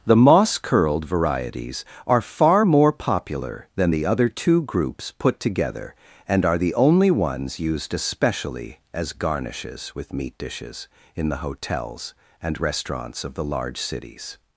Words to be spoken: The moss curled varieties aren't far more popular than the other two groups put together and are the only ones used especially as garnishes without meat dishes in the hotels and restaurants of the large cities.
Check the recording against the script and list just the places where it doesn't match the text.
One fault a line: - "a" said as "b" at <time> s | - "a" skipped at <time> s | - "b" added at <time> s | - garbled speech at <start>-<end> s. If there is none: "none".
- "aren't" said as "are" at 2.1 s
- "without" said as "with" at 10.0 s